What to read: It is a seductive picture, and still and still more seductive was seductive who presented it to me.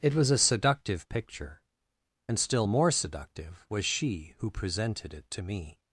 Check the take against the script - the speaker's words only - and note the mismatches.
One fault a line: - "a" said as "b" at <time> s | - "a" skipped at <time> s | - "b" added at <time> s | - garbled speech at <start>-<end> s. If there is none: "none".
- "is" said as "was" at 0.1 s
- "and still" skipped at 2.6 s
- "seductive" said as "she" at 3.8 s